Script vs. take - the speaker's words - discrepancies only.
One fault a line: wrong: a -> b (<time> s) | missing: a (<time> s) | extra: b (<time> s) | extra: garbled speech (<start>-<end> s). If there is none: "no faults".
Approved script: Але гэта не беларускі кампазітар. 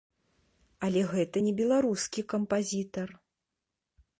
no faults